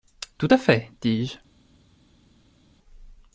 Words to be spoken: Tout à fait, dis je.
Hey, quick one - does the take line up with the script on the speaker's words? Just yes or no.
yes